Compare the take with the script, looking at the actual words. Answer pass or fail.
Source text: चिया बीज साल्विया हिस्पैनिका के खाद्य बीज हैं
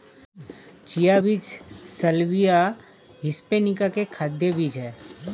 pass